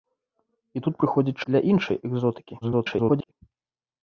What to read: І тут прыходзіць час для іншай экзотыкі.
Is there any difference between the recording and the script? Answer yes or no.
yes